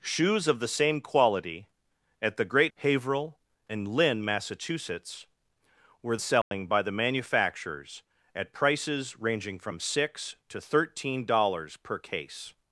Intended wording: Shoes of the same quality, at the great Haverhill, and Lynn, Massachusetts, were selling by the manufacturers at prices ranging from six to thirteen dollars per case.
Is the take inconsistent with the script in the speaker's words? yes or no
no